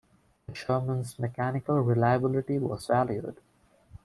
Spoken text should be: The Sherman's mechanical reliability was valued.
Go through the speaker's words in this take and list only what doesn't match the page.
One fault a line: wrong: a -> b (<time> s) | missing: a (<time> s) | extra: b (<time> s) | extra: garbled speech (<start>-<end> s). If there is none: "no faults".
no faults